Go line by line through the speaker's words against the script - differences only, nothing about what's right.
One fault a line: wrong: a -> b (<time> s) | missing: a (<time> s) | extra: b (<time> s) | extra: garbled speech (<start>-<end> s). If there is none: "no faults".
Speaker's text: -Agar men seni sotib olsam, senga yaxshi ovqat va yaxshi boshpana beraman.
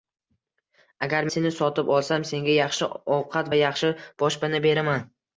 missing: men (1.3 s)